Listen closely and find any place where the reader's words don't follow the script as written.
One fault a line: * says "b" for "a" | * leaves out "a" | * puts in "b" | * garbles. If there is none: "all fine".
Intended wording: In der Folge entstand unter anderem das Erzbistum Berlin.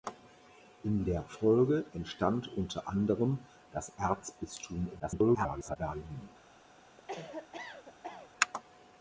* garbles